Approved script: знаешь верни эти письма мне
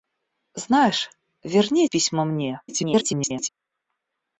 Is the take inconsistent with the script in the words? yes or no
yes